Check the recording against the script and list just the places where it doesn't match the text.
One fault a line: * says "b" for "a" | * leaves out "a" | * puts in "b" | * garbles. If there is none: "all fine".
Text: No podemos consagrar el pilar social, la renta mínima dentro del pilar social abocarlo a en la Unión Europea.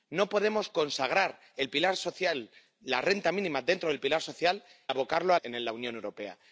all fine